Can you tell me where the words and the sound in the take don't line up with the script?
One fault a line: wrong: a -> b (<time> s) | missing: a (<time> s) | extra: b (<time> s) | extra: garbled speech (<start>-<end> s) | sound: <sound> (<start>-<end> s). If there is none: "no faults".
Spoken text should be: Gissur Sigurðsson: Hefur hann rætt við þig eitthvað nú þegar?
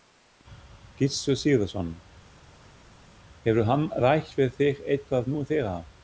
no faults